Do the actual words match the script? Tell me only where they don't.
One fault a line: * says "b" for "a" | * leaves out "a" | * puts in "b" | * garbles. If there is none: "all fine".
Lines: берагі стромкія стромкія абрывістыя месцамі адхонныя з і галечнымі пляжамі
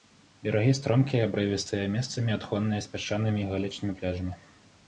* leaves out "стромкія"
* puts in "пясчанымі"